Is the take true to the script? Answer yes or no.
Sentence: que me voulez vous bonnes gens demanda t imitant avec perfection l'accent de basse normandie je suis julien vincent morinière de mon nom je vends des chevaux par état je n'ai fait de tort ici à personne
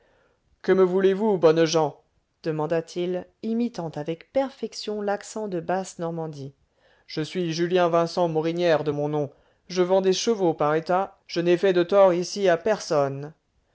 no